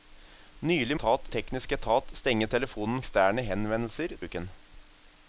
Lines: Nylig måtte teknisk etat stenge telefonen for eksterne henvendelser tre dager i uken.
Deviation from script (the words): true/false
true